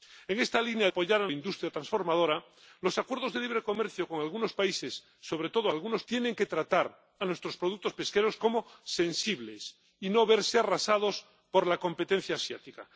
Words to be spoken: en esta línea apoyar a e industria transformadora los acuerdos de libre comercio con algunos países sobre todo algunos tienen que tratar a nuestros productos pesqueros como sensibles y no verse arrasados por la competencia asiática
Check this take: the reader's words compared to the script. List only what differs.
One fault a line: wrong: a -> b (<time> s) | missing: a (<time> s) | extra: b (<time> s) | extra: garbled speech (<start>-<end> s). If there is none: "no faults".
no faults